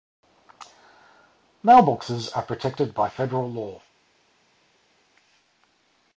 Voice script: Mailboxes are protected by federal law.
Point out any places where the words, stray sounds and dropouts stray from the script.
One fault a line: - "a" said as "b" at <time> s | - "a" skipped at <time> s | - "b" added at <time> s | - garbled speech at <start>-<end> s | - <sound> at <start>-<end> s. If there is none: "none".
none